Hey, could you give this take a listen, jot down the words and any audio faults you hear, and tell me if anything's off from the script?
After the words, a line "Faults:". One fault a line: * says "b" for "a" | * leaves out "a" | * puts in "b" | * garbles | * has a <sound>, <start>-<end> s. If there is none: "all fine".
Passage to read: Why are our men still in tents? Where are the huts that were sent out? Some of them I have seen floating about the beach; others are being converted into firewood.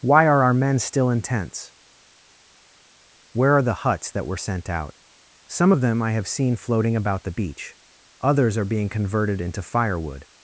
Why are our men still in tents? Where are the huts that were sent out? Some of them I have seen floating about the beach; others are being converted into firewood.
Faults:
all fine